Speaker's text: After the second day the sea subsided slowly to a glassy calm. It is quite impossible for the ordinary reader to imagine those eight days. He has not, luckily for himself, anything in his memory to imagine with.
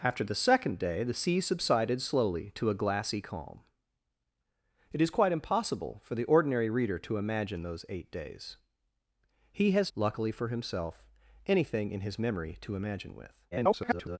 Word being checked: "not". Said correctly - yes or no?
no